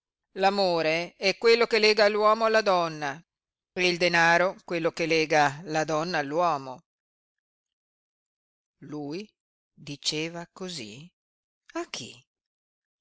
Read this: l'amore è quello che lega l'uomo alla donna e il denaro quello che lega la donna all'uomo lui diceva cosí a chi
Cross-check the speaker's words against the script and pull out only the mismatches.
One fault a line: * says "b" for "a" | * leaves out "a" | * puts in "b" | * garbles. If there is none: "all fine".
all fine